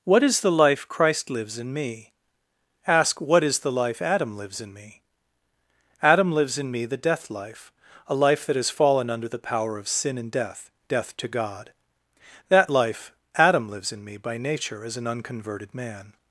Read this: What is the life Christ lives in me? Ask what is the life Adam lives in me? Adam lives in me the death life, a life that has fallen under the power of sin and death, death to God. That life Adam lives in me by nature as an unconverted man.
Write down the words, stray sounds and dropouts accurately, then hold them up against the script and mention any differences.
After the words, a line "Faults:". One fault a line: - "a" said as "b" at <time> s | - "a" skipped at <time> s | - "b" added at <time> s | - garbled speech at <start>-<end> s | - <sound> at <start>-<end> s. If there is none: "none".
What is the life Christ lives in me? Ask what is the life Adam lives in me? Adam lives in me the death life, a life that has fallen under the power of sin and death, death to God. That life Adam lives in me by nature as an unconverted man.
Faults:
none